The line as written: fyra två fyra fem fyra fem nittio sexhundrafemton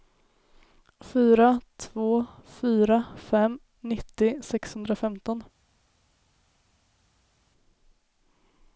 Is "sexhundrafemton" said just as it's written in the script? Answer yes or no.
yes